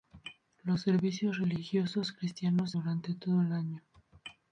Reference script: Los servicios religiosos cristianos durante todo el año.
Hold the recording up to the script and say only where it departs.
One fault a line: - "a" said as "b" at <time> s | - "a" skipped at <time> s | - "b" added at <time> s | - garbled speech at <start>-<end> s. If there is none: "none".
none